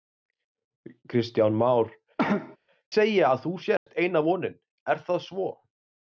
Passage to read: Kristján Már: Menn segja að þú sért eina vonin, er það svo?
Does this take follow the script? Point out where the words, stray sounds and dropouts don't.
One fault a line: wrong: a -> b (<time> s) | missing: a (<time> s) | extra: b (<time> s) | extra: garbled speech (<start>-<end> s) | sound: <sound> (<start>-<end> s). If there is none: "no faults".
missing: Menn (1.9 s)
sound: cough (2.2-2.6 s)
sound: dropout (3.8-3.9 s)